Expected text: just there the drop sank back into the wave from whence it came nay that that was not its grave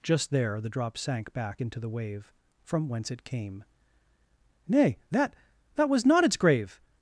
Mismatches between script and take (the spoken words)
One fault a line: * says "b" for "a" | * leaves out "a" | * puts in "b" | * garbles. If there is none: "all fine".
all fine